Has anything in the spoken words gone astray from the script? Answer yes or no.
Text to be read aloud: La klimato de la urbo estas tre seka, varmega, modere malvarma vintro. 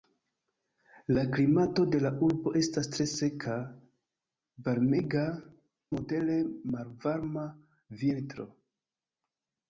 no